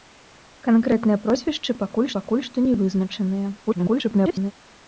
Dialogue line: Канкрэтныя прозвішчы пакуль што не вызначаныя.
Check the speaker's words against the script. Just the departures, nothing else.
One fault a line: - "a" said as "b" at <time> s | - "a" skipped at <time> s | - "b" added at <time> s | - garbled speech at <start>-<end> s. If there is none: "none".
- "пакуль" added at 2.2 s
- garbled speech at 3.7-4.5 s